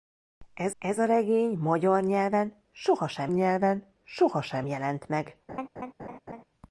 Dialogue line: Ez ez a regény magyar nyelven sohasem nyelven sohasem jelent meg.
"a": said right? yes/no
yes